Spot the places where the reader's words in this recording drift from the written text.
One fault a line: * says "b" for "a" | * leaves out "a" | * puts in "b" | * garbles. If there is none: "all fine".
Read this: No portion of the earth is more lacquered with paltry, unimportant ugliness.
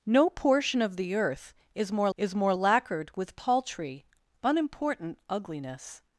* puts in "is more"